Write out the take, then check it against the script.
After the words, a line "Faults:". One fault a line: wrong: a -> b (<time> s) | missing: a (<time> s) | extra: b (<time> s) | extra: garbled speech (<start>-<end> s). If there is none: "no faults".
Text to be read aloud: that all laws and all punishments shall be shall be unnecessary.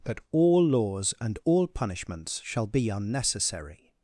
that all laws and all punishments shall be unnecessary.
Faults:
missing: shall be (2.9 s)